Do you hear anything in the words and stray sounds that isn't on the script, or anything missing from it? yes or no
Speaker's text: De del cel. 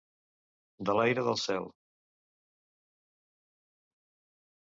yes